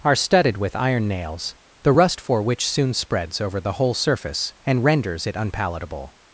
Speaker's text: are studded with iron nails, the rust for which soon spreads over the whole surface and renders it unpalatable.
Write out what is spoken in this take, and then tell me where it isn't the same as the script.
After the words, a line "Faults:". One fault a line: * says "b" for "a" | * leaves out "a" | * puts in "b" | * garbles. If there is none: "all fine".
are studded with iron nails, the rust for which soon spreads over the whole surface and renders it unpalatable.
Faults:
all fine